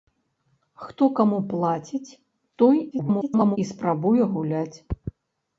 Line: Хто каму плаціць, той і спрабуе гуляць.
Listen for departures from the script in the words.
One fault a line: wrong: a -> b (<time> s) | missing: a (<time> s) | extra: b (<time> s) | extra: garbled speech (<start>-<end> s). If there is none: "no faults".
extra: garbled speech (2.9-3.6 s)